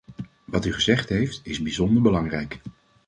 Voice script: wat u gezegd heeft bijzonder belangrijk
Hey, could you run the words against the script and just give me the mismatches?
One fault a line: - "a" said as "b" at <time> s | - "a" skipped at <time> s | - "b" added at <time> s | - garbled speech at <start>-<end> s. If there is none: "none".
- "is" added at 1.4 s